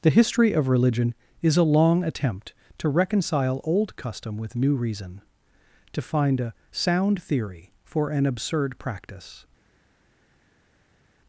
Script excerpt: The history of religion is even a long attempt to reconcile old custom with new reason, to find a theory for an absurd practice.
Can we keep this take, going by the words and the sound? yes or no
no